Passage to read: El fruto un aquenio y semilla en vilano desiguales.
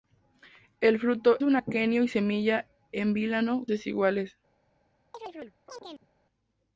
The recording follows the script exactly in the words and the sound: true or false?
false